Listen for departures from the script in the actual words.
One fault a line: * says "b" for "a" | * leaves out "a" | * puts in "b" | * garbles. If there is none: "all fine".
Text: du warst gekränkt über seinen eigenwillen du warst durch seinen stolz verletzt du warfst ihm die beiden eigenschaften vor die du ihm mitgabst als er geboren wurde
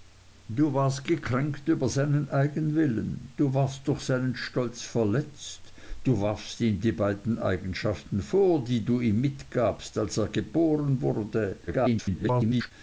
* garbles